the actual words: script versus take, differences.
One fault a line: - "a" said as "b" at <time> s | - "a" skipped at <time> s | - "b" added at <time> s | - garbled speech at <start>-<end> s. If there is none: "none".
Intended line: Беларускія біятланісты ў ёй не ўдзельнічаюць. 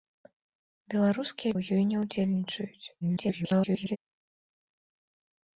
- "біятланісты" skipped at 1.5 s
- garbled speech at 3.0-4.0 s